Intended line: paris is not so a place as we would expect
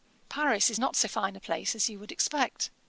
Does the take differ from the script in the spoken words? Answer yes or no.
yes